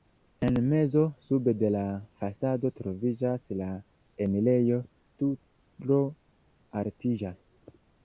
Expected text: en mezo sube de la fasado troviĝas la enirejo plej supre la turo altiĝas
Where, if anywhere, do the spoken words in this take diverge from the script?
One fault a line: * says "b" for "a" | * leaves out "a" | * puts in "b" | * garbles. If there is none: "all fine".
* leaves out "plej supre la"